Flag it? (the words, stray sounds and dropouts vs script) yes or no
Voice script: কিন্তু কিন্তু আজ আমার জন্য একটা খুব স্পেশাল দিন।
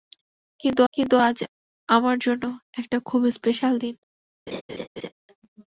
yes